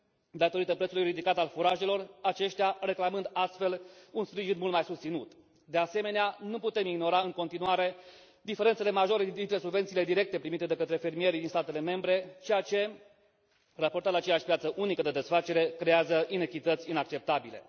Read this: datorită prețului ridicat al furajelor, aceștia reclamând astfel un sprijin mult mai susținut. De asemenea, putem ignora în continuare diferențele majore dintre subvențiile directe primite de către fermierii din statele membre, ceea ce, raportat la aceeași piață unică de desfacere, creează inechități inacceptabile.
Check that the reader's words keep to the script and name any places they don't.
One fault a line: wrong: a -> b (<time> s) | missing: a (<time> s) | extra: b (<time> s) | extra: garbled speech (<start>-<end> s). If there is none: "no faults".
extra: nu (6.4 s)